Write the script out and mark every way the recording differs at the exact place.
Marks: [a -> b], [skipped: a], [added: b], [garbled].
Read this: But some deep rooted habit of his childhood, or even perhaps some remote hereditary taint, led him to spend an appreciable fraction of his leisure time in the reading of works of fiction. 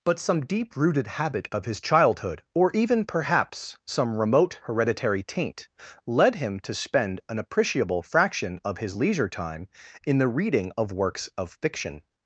But some deep rooted habit of his childhood, or even perhaps some remote hereditary taint, led him to spend an appreciable fraction of his leisure time in the reading of works of fiction.